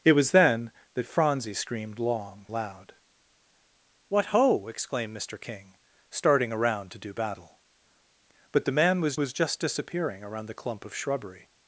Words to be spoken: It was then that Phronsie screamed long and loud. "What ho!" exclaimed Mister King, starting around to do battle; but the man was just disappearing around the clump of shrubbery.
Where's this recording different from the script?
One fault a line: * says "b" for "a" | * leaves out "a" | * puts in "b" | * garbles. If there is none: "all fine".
* leaves out "and"
* puts in "was"